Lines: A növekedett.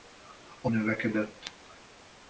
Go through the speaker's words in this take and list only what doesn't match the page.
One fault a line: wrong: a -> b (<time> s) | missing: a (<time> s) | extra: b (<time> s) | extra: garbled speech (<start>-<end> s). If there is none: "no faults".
no faults